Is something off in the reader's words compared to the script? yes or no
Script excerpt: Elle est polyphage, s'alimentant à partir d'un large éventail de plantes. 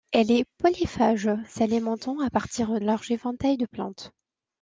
yes